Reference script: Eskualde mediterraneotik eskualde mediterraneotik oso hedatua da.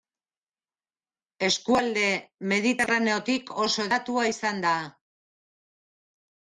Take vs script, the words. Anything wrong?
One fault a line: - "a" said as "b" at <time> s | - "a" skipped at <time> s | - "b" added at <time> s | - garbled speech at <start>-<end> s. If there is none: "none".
- "eskualde mediterraneotik" skipped at 3.5 s
- "izan" added at 4.3 s